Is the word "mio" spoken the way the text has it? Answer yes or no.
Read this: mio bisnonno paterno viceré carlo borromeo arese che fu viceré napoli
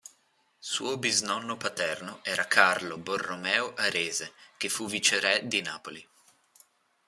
no